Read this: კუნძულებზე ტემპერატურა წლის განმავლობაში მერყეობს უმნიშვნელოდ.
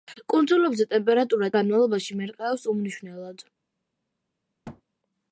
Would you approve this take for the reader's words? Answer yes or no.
no